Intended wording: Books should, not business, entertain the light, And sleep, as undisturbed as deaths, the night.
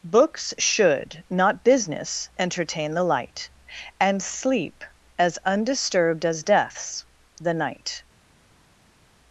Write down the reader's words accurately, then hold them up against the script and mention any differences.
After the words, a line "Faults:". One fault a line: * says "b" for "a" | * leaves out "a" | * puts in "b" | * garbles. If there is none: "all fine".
Books should, not business, entertain the light, And sleep, as undisturbed as deaths, the night.
Faults:
all fine